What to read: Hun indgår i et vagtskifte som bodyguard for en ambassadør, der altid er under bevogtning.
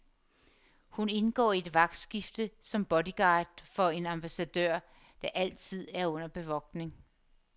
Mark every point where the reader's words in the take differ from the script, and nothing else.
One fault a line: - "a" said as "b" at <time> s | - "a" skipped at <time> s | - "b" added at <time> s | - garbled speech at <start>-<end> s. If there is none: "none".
none